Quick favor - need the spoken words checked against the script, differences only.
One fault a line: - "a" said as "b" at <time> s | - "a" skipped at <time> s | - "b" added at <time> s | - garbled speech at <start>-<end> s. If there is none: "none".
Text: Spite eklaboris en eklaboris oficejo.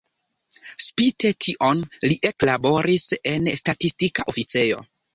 - "tion li" added at 1.5 s
- "eklaboris" said as "statistika" at 3.6 s